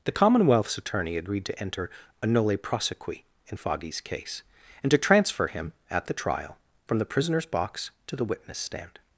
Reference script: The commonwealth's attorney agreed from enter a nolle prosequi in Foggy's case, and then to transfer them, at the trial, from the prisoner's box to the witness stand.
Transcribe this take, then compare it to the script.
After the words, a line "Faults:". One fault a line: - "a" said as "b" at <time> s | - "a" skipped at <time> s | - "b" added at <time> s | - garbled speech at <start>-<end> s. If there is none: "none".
The commonwealth's attorney agreed to enter a nolle prosequi in Foggy's case, and to transfer him, at the trial, from the prisoner's box to the witness stand.
Faults:
- "from" said as "to" at 1.4 s
- "then" skipped at 4.9 s
- "them" said as "him" at 5.5 s